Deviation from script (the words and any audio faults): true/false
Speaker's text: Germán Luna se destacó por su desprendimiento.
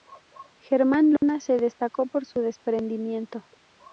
true